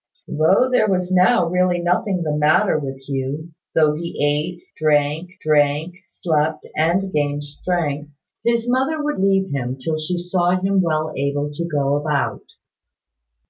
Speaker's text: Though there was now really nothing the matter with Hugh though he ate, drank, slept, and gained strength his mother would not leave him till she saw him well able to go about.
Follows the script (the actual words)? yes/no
no